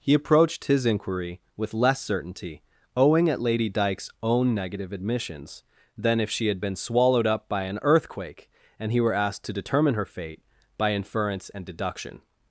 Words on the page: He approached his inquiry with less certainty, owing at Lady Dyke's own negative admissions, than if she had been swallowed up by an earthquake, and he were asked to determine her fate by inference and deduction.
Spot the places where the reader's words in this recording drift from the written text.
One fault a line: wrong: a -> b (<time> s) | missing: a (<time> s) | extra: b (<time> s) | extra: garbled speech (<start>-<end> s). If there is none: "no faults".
no faults